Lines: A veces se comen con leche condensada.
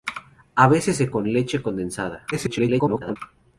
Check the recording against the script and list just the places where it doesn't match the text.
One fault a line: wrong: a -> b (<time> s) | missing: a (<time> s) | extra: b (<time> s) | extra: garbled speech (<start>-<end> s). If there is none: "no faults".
missing: comen (1.1 s)
extra: garbled speech (2.3-3.2 s)